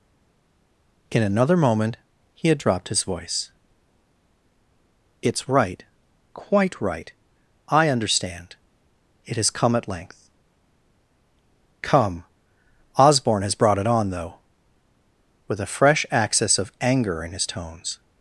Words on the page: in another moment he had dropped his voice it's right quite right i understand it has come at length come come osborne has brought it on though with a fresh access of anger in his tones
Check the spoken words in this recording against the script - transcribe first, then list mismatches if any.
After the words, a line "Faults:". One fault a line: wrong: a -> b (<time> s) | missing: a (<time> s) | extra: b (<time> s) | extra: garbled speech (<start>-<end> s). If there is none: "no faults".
in another moment he had dropped his voice it's right quite right i understand it has come at length come osborne has brought it on though with a fresh access of anger in his tones
Faults:
missing: come (12.2 s)